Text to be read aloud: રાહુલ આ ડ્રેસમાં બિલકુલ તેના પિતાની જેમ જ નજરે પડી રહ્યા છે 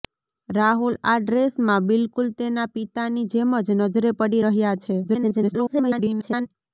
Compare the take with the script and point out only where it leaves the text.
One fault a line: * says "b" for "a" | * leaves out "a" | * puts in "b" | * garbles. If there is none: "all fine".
* garbles